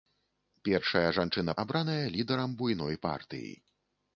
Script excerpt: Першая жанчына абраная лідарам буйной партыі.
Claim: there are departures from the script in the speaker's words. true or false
false